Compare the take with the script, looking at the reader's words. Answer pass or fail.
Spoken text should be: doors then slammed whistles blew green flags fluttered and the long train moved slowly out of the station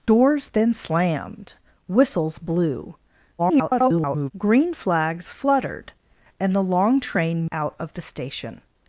fail